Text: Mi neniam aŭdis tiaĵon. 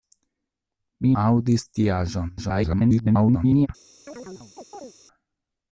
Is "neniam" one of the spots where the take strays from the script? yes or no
yes